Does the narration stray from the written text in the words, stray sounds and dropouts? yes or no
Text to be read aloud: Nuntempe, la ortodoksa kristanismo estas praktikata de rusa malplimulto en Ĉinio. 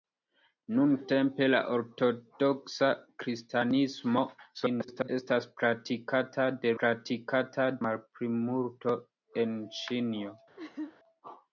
yes